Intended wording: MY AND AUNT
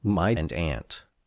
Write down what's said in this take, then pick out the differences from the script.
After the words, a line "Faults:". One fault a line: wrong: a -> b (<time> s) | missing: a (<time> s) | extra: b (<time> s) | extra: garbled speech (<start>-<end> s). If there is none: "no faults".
MY AND AUNT
Faults:
no faults